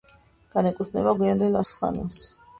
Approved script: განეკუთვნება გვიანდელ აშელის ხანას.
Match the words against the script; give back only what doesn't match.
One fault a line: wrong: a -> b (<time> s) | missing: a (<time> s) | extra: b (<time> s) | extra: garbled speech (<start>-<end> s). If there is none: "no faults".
missing: აშელის (1.6 s)